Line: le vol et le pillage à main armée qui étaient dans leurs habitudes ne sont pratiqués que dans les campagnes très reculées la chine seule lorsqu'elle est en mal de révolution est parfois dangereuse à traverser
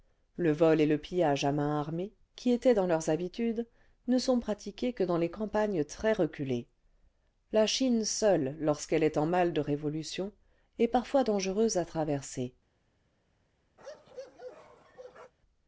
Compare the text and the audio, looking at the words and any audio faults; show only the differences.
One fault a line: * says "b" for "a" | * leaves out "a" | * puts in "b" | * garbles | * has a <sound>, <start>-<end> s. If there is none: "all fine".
* has a bark, 13.8-15.3 s